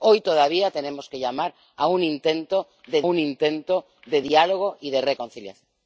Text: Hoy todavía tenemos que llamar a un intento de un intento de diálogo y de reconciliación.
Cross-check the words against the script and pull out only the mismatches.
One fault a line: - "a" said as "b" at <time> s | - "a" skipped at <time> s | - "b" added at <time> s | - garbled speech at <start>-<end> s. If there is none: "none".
none